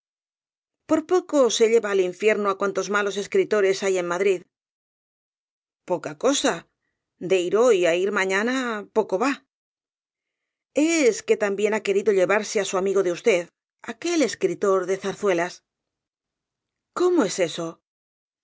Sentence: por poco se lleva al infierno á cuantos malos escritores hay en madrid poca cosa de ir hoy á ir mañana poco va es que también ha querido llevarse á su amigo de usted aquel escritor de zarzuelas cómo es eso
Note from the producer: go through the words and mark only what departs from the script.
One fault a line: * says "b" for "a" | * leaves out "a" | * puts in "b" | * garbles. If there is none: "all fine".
all fine